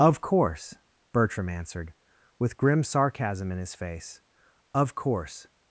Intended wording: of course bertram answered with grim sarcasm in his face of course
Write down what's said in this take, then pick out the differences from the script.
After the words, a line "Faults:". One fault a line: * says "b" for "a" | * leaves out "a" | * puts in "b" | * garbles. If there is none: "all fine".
of course bertram answered with grim sarcasm in his face of course
Faults:
all fine